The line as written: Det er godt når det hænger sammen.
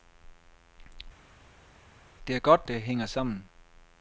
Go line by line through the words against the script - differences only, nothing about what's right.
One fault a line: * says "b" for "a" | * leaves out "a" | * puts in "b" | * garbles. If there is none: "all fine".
* leaves out "når"